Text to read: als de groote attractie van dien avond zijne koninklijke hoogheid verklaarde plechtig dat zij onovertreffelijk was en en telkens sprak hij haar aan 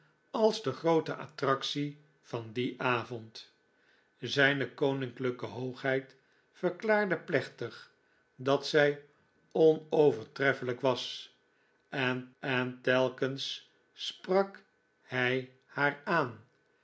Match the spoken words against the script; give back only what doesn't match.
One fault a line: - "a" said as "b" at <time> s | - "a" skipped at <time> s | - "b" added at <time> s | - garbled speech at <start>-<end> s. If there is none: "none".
none